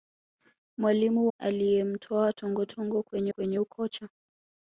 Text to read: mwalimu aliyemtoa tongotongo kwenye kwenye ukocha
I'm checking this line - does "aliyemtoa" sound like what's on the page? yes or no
yes